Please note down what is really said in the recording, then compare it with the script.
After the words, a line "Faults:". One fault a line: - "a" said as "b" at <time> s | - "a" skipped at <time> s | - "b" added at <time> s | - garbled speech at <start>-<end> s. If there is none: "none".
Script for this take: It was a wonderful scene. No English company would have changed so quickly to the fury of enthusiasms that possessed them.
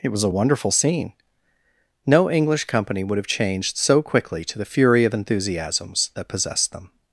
It was a wonderful scene. No English company would have changed so quickly to the fury of enthusiasms that possessed them.
Faults:
none